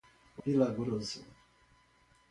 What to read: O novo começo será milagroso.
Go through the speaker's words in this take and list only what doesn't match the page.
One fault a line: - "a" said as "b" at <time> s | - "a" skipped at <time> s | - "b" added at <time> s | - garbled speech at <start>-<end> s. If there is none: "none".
- "novo começo será" skipped at 0.4 s